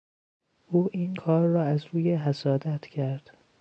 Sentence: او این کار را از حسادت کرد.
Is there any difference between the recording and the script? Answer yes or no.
yes